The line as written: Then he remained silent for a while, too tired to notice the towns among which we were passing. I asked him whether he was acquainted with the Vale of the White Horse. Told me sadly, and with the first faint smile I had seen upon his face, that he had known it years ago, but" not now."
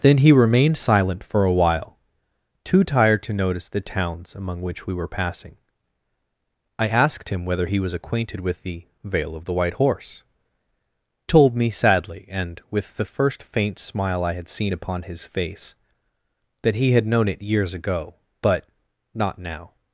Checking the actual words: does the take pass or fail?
pass